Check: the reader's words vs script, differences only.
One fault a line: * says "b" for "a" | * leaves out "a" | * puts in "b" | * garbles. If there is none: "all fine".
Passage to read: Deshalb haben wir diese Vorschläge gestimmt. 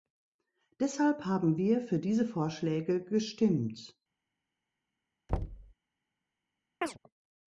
* puts in "für"